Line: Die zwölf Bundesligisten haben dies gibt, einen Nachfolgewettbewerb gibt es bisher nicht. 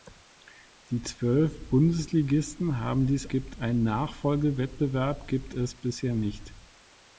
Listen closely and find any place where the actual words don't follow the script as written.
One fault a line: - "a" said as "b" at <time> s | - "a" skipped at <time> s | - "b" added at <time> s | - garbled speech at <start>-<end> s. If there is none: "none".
none